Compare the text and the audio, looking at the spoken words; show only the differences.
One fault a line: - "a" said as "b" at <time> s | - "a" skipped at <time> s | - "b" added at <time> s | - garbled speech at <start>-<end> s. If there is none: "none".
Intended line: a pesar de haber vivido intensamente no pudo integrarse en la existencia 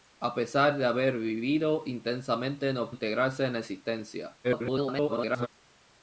- "pudo" skipped at 2.9 s
- garbled speech at 4.4-5.5 s